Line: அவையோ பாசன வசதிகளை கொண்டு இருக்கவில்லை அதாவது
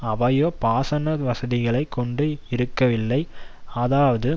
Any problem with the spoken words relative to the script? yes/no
no